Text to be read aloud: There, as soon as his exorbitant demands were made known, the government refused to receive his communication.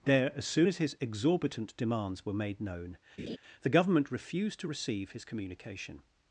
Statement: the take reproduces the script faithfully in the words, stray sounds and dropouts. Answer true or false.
false